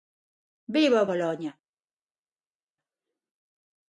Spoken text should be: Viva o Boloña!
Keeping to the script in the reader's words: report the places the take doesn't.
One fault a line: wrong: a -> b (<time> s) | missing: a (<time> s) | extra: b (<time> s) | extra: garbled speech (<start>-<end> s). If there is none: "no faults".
no faults